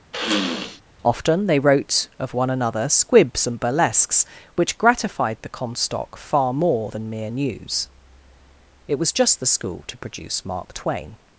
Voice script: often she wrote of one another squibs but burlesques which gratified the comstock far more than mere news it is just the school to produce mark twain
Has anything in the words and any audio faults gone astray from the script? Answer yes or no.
yes